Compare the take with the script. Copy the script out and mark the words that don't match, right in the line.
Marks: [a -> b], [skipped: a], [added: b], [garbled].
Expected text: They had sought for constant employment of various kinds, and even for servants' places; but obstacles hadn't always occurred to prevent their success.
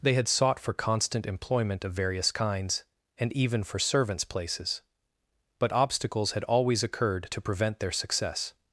They had sought for constant employment of various kinds, and even for servants' places; but obstacles [hadn't -> had] always occurred to prevent their success.